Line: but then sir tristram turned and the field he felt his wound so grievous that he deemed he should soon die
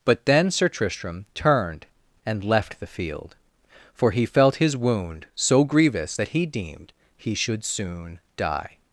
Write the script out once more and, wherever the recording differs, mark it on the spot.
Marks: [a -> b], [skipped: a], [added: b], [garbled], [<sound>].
but then sir tristram turned and [added: left] the field [added: for] he felt his wound so grievous that he deemed he should soon die